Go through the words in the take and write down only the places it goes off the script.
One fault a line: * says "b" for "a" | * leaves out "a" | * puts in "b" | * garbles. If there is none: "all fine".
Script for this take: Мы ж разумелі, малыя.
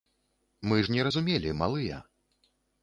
* puts in "не"